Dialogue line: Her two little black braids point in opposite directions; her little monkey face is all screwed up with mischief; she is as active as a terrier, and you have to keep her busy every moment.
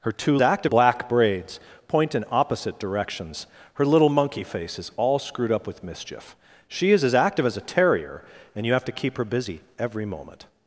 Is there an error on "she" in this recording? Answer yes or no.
no